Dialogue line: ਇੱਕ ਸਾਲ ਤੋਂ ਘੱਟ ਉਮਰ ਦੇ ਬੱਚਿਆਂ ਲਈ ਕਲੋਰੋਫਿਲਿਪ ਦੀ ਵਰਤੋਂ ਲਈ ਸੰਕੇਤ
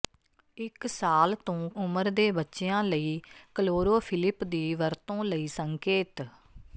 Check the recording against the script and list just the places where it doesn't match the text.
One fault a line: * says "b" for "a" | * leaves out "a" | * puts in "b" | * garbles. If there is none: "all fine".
* leaves out "ਘੱਟ"